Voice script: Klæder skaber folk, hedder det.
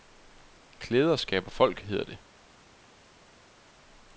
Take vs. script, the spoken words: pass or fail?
pass